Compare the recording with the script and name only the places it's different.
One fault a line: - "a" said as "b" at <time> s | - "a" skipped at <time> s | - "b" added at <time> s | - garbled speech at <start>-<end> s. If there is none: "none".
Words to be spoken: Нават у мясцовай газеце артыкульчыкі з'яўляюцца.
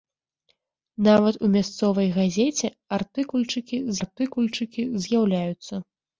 - "артыкульчыкі" added at 4.0 s